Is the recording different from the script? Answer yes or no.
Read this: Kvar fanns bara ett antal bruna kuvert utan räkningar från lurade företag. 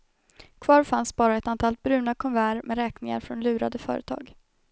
yes